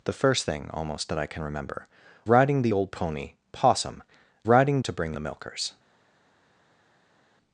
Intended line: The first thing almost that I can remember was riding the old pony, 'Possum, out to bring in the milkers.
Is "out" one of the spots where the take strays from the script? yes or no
yes